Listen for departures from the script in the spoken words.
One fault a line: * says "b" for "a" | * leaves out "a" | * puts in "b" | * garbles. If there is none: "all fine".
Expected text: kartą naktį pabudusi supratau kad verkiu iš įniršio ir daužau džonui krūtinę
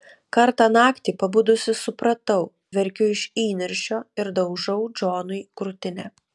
* leaves out "kad"